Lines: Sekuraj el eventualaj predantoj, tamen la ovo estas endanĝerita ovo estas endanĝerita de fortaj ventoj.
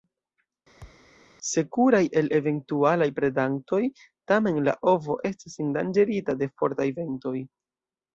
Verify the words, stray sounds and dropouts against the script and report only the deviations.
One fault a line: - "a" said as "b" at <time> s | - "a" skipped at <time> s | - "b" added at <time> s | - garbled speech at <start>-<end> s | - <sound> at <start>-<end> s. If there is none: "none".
- thud at 0.8-1.1 s
- "ovo estas endanĝerita" skipped at 6.4 s